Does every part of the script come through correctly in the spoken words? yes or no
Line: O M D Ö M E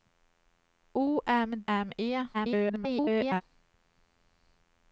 no